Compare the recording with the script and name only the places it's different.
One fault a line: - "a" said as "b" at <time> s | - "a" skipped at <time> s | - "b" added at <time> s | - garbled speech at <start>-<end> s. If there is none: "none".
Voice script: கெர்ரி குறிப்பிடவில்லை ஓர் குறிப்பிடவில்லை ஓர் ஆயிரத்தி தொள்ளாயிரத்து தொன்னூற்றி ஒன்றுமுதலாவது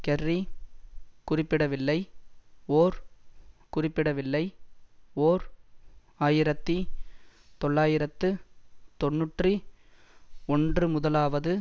none